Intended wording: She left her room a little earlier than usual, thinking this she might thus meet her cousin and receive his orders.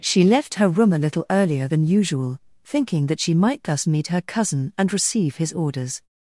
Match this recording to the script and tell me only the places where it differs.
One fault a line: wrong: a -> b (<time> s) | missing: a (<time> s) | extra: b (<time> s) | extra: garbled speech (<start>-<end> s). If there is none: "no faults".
wrong: this -> that (3.1 s)